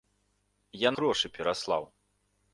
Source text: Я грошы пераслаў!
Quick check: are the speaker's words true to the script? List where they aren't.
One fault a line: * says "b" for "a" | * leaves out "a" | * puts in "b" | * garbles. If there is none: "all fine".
all fine